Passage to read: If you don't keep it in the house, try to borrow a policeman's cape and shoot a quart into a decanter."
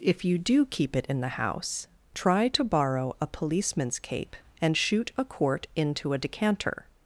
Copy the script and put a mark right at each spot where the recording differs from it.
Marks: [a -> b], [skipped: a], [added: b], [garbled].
If you [don't -> do] keep it in the house, try to borrow a policeman's cape and shoot a quart into a decanter."